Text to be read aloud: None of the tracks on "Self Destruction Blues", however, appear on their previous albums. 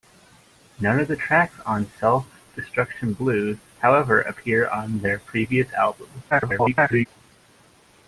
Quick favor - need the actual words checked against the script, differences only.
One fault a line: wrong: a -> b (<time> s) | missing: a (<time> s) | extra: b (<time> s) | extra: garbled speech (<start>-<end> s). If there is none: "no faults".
extra: garbled speech (6.3-7.1 s)